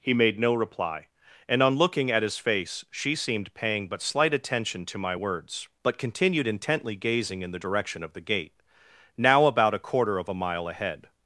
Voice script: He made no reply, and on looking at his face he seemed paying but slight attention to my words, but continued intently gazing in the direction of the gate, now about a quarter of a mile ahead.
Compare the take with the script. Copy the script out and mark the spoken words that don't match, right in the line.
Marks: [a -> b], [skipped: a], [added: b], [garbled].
He made no reply, and on looking at his face [he -> she] seemed paying but slight attention to my words, but continued intently gazing in the direction of the gate, now about a quarter of a mile ahead.